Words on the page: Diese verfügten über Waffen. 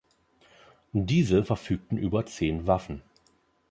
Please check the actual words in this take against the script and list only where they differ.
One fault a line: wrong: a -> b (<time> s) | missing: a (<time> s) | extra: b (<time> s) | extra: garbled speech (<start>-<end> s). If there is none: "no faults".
extra: zehn (2.2 s)